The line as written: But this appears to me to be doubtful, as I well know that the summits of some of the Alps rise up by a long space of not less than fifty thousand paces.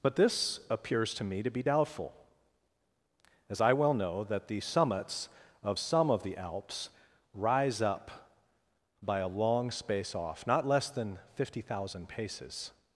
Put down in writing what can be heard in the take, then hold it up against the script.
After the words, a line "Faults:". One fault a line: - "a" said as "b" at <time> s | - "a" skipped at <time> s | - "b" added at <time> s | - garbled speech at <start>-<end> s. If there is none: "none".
But this appears to me to be doubtful, as I well know that the summits of some of the Alps rise up by a long space off not less than fifty thousand paces.
Faults:
- "of" said as "off" at 10.1 s